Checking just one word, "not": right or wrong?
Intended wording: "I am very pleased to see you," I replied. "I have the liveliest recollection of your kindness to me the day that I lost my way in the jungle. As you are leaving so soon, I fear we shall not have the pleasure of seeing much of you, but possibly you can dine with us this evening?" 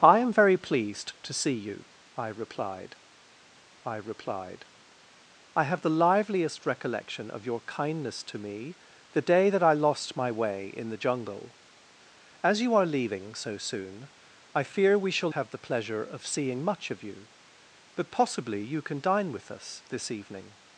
wrong